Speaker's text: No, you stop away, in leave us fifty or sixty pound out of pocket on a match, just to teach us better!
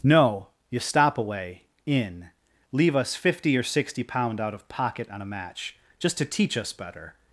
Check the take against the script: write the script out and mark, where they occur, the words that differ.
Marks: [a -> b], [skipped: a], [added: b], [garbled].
No, you stop away, in leave us fifty or sixty pound out of pocket on a match, just to teach us better!